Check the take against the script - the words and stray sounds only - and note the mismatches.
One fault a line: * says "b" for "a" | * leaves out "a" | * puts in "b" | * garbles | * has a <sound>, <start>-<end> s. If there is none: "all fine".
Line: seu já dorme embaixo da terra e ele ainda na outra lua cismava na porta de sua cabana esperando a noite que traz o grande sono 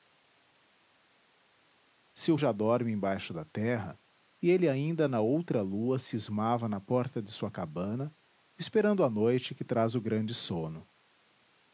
all fine